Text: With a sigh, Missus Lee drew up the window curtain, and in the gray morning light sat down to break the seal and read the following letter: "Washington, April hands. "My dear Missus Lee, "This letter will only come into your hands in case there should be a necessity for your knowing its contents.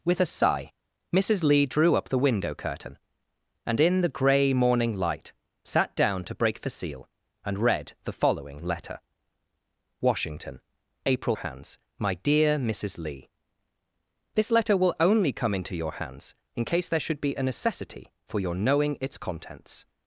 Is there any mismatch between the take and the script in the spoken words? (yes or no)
no